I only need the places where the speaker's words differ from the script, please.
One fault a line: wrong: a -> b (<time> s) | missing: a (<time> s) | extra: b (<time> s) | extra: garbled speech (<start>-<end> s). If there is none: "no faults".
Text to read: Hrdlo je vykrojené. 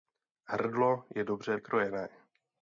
extra: dobře (1.2 s)